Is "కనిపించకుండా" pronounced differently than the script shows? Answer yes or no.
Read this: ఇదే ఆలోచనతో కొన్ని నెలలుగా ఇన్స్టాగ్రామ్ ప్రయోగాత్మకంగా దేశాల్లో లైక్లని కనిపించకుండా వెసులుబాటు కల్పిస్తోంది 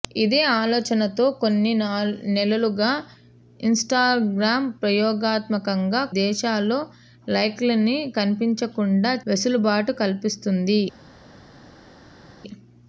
no